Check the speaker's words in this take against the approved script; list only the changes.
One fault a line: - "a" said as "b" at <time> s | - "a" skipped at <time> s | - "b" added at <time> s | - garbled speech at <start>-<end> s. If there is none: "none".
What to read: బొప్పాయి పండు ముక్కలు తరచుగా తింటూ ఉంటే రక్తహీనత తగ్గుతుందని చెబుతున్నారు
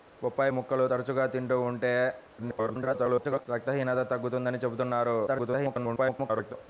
- "పండు" skipped at 0.5 s
- garbled speech at 2.4-3.5 s
- garbled speech at 5.3-6.5 s